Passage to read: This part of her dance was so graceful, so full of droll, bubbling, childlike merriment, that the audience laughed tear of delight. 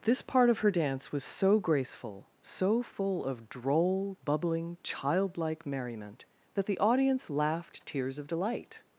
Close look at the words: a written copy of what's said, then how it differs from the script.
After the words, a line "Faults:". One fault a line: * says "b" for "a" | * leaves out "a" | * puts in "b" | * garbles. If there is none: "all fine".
This part of her dance was so graceful, so full of droll, bubbling, childlike merriment, that the audience laughed tears of delight.
Faults:
* says "tears" for "tear"